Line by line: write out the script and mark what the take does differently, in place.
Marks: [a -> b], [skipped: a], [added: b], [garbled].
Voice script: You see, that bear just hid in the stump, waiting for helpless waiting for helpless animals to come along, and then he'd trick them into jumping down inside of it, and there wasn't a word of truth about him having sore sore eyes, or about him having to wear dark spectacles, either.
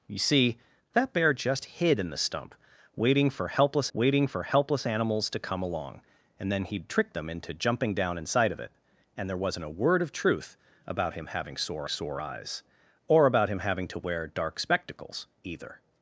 You see, that bear just hid in the stump, waiting for helpless waiting for helpless animals to come along, and then he'd trick them into jumping down inside of it, and there wasn't a word of truth about him having sore sore eyes, or about him having to wear dark spectacles, either.